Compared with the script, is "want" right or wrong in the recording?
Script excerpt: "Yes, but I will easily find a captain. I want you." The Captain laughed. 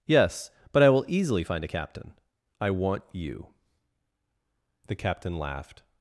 right